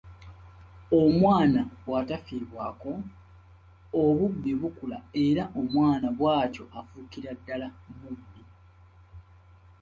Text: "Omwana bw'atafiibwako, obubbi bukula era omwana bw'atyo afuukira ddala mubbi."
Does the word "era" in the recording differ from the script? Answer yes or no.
no